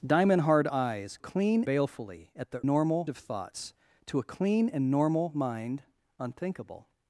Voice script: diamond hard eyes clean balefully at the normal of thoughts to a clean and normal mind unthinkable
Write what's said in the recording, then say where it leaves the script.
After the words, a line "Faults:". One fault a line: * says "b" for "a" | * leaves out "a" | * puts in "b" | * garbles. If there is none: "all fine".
diamond hard eyes clean balefully at the normal of thoughts to a clean and normal mind unthinkable
Faults:
all fine